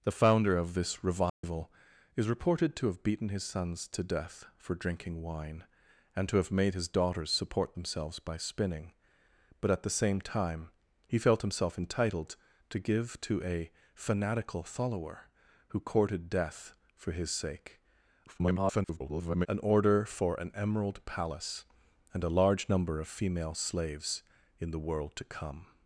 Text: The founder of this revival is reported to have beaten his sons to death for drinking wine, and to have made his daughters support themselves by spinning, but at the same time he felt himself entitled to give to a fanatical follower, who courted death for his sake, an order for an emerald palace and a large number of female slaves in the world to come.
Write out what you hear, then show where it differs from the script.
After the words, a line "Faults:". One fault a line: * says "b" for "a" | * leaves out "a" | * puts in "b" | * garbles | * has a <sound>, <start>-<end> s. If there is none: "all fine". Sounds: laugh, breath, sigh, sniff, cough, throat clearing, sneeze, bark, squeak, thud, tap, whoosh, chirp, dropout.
The founder of this revival is reported to have beaten his sons to death for drinking wine, and to have made his daughters support themselves by spinning, but at the same time he felt himself entitled to give to a fanatical follower, who courted death for his sake, [garbled] an order for an emerald palace and a large number of female slaves in the world to come.
Faults:
* has a dropout, 1.3-1.4 s
* garbles